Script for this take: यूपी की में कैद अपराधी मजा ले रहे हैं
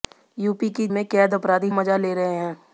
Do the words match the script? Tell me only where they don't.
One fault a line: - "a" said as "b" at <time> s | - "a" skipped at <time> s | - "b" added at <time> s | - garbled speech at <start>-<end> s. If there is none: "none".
none